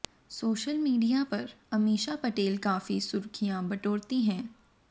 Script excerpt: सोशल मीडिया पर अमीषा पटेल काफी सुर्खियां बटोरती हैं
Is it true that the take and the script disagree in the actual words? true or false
false